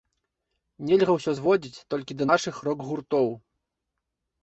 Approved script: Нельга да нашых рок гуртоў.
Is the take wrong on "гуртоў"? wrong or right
right